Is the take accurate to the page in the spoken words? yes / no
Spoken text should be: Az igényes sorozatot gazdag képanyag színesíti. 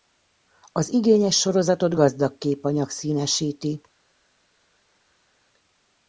yes